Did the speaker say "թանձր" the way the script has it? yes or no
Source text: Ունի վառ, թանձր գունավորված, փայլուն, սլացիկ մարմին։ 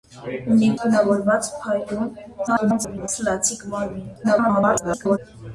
no